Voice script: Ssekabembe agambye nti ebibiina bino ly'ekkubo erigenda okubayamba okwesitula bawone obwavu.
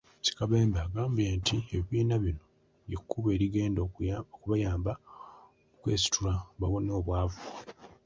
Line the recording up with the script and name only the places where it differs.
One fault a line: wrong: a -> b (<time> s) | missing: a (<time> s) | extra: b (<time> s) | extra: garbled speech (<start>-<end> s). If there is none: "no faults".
no faults